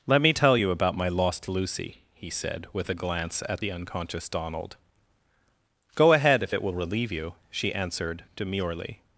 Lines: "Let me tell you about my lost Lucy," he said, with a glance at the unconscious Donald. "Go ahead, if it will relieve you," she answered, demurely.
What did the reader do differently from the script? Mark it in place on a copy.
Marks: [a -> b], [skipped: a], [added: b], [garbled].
"Let me tell you about my lost Lucy," he said, with a glance at the unconscious Donald. "Go ahead, if it will relieve you," she answered, demurely.